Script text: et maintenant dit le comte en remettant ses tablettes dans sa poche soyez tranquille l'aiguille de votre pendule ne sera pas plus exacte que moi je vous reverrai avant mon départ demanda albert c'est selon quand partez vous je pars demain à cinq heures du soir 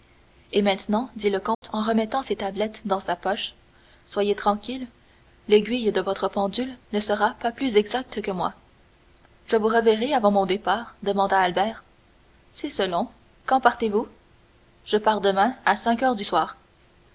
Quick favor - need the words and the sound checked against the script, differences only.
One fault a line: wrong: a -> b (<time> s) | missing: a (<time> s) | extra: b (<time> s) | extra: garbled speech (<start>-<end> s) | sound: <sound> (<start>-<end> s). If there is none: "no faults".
sound: dropout (1.5-1.6 s)